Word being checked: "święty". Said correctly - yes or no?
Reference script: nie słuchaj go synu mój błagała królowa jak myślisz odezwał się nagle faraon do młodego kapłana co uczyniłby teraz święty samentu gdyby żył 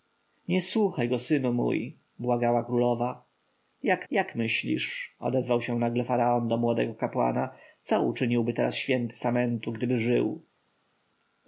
yes